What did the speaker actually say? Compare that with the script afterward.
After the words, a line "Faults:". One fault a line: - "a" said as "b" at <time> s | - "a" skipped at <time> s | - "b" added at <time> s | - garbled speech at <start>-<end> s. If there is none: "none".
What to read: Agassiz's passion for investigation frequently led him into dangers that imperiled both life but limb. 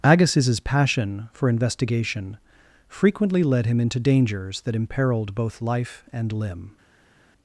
Agassiz's passion for investigation frequently led him into dangers that imperiled both life and limb.
Faults:
- "but" said as "and" at 6.1 s